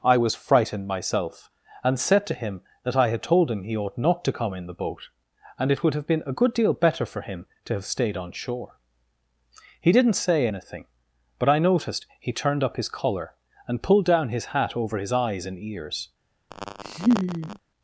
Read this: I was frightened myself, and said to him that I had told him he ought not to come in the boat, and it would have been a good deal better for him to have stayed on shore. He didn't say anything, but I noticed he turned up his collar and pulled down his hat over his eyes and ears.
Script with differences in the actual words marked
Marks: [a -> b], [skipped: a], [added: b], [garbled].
I was frightened myself, and said to him that I had told him he ought not to come in the boat, and it would have been a good deal better for him to have stayed on shore. He didn't say anything, but I noticed he turned up his collar and pulled down his hat over his eyes and ears.